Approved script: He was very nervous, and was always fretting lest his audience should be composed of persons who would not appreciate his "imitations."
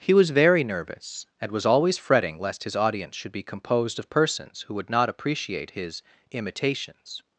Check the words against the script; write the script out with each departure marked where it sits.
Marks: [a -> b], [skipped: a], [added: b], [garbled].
He was very nervous, and was always fretting lest his audience should be composed of persons who would not appreciate his "imitations."